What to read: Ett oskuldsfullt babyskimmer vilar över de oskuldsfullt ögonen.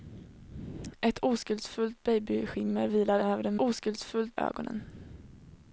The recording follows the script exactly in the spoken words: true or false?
true